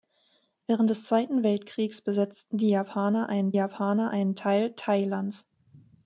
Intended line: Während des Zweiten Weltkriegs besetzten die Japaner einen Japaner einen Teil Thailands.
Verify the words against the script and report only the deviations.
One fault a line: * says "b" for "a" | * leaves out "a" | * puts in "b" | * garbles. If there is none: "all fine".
all fine